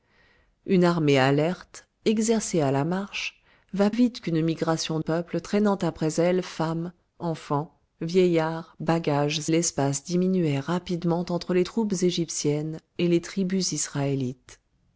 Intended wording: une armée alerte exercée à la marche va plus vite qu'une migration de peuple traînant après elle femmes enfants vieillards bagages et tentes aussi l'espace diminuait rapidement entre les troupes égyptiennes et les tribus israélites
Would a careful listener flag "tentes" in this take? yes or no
yes